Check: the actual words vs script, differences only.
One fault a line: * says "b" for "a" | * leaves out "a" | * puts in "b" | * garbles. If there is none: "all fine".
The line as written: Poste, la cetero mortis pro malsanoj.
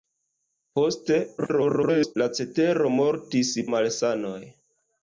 * garbles
* leaves out "pro"